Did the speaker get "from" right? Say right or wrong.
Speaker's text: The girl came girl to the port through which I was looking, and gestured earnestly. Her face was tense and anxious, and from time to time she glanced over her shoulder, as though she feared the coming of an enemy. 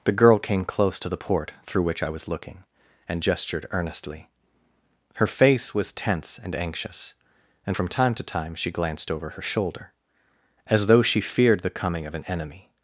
right